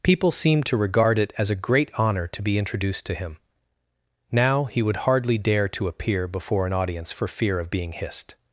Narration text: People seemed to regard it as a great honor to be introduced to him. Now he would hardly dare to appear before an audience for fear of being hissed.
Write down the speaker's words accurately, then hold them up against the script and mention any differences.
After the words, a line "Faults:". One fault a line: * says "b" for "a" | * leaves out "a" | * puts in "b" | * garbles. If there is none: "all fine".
People seemed to regard it as a great honor to be introduced to him. Now he would hardly dare to appear before an audience for fear of being hissed.
Faults:
all fine